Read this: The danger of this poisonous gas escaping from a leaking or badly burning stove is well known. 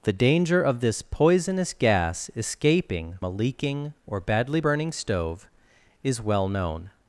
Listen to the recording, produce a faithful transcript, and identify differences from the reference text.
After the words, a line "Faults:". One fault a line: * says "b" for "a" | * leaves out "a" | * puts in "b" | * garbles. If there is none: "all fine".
The danger of this poisonous gas escaping a leaking or badly burning stove is well known.
Faults:
* leaves out "from"